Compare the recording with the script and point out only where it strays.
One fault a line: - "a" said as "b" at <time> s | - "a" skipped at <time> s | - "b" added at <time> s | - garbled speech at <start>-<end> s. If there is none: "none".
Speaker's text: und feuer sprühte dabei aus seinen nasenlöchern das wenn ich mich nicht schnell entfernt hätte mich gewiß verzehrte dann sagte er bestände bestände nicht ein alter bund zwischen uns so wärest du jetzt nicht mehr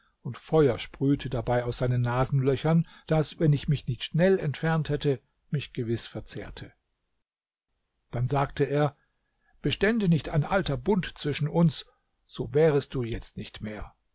- "bestände" skipped at 10.1 s